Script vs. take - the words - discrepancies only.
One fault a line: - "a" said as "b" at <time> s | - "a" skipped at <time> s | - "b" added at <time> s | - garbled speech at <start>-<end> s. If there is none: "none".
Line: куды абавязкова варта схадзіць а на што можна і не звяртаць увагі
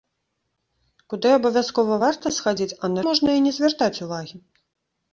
- "што" skipped at 3.0 s